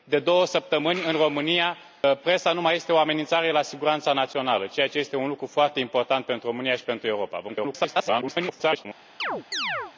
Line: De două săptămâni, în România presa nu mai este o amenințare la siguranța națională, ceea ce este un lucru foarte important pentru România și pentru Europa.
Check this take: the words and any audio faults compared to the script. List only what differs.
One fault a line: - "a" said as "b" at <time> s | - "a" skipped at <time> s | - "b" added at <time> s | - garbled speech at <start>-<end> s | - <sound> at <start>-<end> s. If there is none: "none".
- garbled speech at 7.5-8.9 s
- chirp at 9.2-9.9 s